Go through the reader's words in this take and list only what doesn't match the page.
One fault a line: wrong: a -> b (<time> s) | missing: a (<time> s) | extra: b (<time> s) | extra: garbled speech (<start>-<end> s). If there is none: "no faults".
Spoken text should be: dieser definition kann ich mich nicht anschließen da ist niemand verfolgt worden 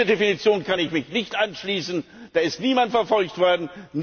no faults